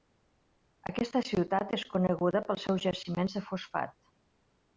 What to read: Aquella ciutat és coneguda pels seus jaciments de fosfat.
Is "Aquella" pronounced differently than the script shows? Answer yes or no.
yes